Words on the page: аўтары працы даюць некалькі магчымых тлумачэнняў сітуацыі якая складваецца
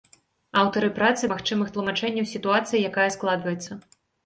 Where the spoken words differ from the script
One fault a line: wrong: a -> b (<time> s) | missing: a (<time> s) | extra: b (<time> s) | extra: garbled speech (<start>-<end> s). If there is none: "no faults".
missing: даюць некалькі (1.3 s)